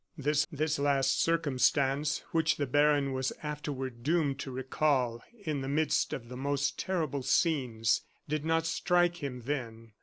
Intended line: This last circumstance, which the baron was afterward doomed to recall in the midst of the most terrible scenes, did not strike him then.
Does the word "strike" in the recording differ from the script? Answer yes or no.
no